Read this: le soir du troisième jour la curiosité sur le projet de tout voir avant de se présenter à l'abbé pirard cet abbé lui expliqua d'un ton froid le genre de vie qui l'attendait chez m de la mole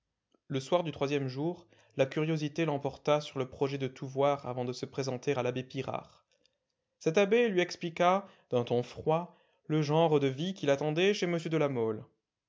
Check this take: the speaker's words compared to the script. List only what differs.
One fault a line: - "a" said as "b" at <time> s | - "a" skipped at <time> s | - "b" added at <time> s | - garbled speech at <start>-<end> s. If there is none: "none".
- "l'emporta" added at 2.6 s